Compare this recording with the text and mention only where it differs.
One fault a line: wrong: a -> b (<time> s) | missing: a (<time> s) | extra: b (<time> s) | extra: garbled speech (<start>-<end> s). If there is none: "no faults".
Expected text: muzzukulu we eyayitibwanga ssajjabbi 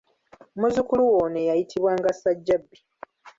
extra: ono (1.2 s)